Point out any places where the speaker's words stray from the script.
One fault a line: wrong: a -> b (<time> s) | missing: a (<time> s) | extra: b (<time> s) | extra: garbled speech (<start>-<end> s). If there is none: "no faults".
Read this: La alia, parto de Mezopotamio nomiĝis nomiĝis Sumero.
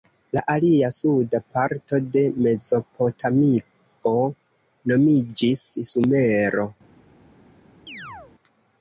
extra: suda (1.0 s)
missing: nomiĝis (5.7 s)